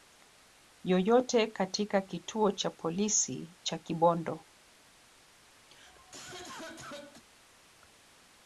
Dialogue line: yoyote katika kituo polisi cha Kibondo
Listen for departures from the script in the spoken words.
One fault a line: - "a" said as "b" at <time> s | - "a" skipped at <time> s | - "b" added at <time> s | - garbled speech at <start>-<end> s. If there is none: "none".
- "cha" added at 2.5 s